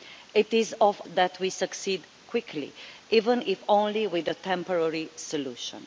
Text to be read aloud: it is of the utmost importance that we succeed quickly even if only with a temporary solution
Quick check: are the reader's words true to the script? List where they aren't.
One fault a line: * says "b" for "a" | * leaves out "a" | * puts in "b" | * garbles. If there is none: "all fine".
* leaves out "the utmost importance"